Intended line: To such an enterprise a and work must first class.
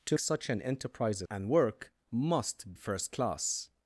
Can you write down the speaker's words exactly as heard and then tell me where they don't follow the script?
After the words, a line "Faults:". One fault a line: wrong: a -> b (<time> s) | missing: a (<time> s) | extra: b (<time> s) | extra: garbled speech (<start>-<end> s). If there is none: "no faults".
To such an enterprise a and work must first class.
Faults:
no faults